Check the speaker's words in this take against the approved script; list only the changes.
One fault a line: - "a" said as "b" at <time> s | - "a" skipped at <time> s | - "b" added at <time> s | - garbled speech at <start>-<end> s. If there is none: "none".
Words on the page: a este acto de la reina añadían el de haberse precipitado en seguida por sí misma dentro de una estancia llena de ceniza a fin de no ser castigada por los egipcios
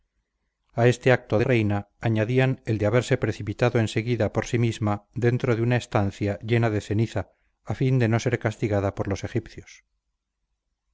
- "la" skipped at 1.4 s